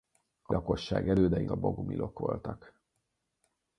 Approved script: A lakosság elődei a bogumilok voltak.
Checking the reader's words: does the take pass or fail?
pass